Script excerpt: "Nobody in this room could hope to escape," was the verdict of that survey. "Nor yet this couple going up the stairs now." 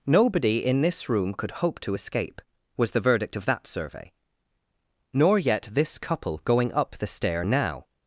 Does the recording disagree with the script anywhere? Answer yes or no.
yes